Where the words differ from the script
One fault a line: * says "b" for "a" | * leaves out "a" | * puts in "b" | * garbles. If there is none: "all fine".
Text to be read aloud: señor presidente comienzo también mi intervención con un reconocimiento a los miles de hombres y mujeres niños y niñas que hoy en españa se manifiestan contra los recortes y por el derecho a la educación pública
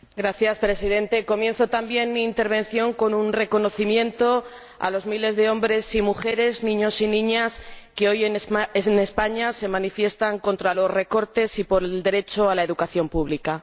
all fine